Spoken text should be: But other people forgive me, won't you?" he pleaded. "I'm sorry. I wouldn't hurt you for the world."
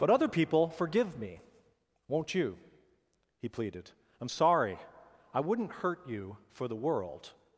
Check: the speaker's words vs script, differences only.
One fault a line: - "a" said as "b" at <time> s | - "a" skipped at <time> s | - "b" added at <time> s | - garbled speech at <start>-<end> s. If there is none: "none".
none